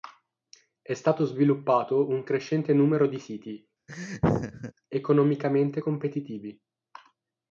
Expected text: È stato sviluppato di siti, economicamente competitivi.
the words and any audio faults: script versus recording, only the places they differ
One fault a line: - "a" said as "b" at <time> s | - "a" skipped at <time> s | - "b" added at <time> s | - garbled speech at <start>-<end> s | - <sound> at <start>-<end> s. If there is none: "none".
- "un crescente numero" added at 2.1 s
- laugh at 3.9-4.7 s